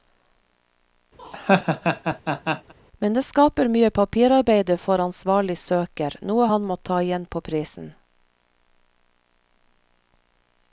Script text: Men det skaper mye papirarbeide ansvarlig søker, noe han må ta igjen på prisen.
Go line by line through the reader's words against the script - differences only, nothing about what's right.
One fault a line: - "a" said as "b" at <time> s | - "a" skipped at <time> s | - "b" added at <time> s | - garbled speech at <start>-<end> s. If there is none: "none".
- "for" added at 4.9 s